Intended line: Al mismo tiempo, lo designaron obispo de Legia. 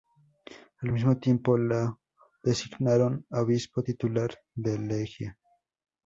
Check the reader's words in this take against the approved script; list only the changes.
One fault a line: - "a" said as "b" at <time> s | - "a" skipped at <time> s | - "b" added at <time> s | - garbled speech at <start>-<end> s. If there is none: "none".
- "titular" added at 3.8 s